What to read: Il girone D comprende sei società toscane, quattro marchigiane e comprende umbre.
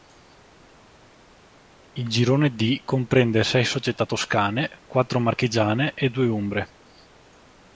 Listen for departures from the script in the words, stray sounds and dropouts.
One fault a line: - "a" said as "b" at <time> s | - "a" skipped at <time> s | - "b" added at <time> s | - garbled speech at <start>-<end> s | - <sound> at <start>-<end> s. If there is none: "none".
- "comprende" said as "due" at 6.1 s